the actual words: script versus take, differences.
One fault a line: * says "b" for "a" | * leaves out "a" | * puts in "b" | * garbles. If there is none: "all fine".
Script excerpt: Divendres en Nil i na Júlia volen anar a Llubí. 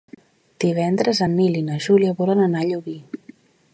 all fine